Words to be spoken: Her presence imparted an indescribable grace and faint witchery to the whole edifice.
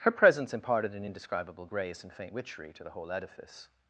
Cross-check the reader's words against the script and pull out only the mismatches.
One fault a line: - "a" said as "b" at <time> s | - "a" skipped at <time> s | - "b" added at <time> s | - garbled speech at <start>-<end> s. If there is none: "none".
none